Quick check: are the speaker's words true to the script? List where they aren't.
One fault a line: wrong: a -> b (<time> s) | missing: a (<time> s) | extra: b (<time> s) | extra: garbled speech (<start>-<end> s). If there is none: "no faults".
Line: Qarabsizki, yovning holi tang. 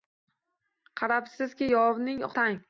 missing: holi (2.2 s)